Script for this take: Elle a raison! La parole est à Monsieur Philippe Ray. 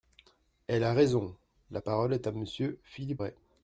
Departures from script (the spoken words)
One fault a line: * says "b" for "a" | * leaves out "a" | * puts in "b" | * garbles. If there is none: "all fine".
all fine